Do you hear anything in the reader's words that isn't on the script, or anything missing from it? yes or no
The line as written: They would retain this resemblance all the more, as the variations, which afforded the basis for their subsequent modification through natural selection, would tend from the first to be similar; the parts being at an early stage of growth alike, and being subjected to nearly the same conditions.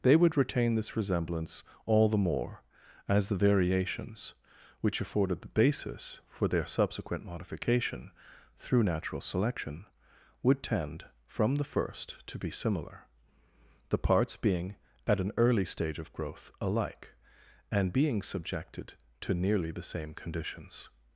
no